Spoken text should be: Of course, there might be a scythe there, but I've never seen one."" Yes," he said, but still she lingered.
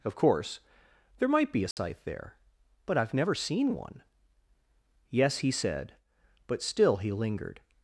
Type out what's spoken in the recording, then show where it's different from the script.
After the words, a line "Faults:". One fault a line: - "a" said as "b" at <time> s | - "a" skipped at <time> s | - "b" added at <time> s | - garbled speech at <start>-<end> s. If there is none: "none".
Of course, there might be a scythe there, but I've never seen one."" Yes," he said, but still he lingered.
Faults:
- "she" said as "he" at 7.0 s